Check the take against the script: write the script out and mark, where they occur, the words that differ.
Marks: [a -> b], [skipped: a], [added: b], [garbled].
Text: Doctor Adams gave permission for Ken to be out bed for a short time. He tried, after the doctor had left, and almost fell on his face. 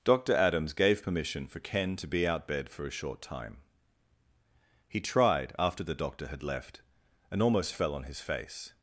Doctor Adams gave permission for Ken to be out bed for a short time. He tried, after the doctor had left, and almost fell on his face.